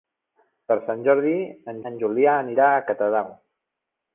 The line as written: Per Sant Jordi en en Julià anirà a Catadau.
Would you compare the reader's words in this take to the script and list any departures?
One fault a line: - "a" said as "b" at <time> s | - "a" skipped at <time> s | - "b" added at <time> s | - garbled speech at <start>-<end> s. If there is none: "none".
none